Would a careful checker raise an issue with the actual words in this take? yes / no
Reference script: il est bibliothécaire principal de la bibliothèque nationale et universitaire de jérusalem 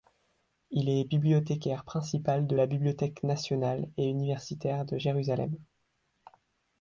no